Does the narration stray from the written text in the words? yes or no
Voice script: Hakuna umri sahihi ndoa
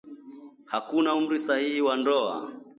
yes